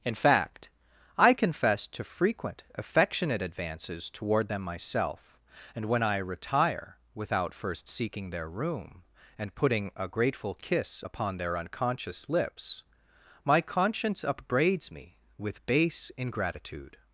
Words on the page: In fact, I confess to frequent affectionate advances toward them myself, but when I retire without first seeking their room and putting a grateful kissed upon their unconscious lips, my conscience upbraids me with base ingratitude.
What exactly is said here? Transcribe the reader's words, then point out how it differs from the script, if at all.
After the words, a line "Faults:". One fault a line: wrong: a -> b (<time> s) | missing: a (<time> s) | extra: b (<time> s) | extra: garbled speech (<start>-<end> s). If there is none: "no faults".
In fact, I confess to frequent affectionate advances toward them myself, and when I retire without first seeking their room and putting a grateful kiss upon their unconscious lips, my conscience upbraids me with base ingratitude.
Faults:
wrong: but -> and (5.8 s)
wrong: kissed -> kiss (10.5 s)